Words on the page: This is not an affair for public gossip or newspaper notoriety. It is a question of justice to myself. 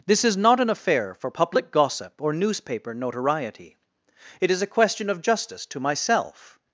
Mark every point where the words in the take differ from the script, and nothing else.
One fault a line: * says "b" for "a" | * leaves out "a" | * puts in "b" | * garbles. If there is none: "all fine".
all fine